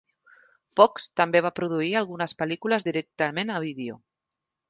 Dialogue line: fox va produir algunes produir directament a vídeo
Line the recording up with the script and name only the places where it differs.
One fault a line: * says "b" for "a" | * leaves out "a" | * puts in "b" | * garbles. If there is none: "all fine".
* puts in "també"
* says "pel·lícules" for "produir"